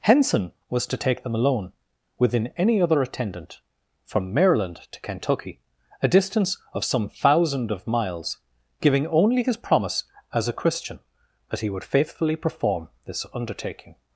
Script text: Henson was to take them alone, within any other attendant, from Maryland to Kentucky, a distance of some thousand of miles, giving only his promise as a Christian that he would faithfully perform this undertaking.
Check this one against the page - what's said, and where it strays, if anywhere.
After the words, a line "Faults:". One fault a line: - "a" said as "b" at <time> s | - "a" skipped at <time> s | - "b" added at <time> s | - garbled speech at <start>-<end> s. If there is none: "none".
Henson was to take them alone, within any other attendant, from Maryland to Kentucky, a distance of some thousand of miles, giving only his promise as a Christian that he would faithfully perform this undertaking.
Faults:
none